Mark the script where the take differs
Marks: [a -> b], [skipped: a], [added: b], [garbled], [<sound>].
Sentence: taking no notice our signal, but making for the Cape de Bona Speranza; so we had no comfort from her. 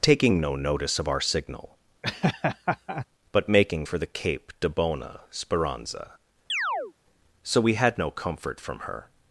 taking no notice [added: of] our signal, [laugh] but making for the Cape de Bona Speranza; [chirp] so we had no comfort from her.